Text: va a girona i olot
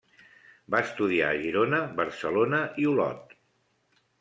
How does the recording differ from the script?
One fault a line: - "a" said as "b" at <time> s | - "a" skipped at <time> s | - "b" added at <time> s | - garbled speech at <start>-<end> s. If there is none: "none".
- "estudiar" added at 0.8 s
- "barcelona" added at 2.0 s